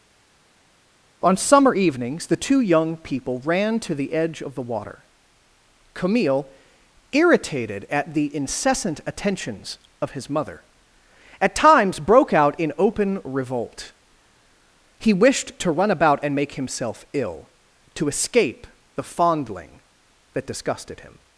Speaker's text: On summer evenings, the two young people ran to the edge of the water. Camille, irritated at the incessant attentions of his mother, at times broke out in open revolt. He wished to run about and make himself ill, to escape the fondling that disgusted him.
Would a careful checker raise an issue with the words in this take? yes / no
no